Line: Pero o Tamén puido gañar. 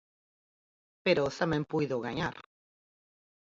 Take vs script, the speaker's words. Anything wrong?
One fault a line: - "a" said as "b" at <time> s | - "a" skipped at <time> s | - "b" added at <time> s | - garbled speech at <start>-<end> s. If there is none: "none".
none